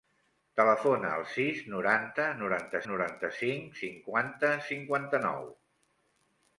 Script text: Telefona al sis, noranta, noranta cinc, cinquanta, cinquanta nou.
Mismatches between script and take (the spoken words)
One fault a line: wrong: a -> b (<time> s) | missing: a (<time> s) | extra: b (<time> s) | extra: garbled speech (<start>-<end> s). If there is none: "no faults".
extra: noranta (2.9 s)